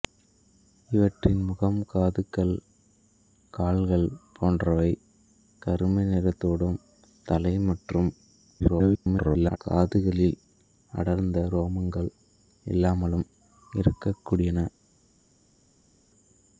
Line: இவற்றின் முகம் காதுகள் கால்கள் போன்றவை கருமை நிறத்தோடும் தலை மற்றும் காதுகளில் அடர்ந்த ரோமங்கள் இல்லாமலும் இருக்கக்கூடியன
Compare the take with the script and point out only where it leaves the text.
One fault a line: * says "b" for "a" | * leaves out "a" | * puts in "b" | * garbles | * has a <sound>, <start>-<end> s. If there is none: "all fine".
* garbles